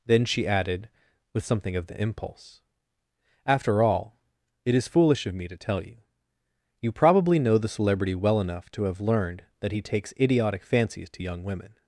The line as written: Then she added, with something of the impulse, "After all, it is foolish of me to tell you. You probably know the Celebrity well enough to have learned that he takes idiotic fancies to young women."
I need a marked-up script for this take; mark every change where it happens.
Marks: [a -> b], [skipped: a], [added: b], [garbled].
Then she added, with something of the impulse, "After all, it is foolish of me to tell you. You probably know the Celebrity well enough to have learned that he takes idiotic fancies to young women."